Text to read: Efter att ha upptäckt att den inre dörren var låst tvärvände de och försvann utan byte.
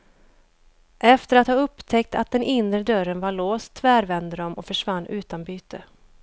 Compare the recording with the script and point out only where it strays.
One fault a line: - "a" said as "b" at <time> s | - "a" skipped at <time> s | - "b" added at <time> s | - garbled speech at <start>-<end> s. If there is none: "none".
none